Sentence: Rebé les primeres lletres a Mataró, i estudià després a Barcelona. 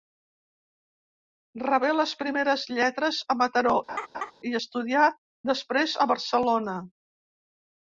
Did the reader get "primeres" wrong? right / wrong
right